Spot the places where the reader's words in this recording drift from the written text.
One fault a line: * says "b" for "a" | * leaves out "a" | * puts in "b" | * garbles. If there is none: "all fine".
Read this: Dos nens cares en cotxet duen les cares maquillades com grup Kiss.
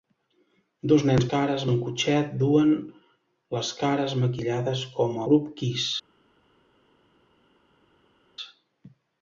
all fine